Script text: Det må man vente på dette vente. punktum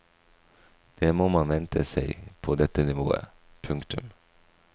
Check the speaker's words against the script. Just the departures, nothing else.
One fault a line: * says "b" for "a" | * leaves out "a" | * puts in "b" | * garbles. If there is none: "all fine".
* puts in "seg"
* says "nivået" for "vente"